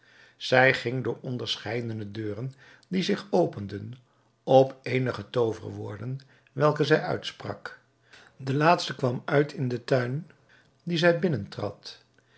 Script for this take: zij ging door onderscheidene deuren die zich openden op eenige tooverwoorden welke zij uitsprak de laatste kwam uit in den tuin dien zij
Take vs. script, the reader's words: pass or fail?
pass